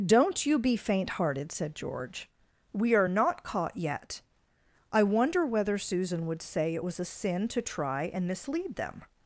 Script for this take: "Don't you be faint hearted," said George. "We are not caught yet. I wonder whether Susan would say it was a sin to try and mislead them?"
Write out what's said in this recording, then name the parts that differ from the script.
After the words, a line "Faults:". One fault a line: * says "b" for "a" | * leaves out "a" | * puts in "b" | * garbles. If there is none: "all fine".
"Don't you be faint hearted," said George. "We are not caught yet. I wonder whether Susan would say it was a sin to try and mislead them?"
Faults:
all fine